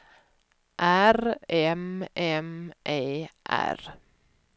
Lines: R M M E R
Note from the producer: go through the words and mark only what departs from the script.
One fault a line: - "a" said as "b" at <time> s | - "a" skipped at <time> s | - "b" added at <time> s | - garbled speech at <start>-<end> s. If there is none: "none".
none